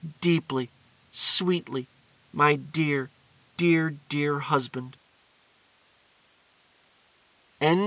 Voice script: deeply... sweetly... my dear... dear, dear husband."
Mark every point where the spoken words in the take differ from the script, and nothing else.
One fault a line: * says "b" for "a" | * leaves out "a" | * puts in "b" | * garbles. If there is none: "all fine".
all fine